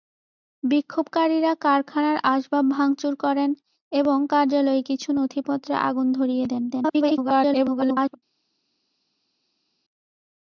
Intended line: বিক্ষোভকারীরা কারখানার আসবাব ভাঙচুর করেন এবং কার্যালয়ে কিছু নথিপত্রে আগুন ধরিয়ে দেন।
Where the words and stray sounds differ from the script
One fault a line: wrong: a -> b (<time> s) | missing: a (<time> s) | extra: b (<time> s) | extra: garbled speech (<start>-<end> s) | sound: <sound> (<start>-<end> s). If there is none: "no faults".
extra: garbled speech (6.7-8.2 s)